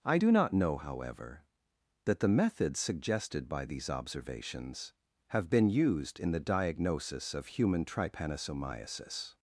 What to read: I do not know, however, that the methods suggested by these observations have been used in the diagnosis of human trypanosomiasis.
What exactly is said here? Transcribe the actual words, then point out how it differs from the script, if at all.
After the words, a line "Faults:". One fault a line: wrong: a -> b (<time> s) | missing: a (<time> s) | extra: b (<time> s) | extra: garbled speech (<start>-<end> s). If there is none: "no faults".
I do not know, however, that the methods suggested by these observations have been used in the diagnosis of human trypanosomiasis.
Faults:
no faults